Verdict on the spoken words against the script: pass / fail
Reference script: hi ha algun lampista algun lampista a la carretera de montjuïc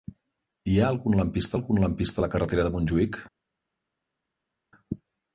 pass